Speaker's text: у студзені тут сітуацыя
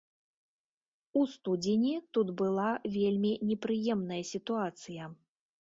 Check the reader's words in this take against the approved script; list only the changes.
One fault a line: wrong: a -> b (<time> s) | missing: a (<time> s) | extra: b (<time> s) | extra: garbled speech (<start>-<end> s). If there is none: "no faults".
extra: была вельмі непрыемная (2.4 s)